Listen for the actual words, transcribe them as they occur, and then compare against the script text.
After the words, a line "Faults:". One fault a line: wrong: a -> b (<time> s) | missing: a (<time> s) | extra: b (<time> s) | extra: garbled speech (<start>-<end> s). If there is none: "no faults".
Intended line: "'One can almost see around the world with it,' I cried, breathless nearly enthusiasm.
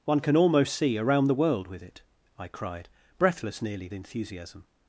"'One can almost see around the world with it,' I cried, breathless nearly enthusiasm.
Faults:
no faults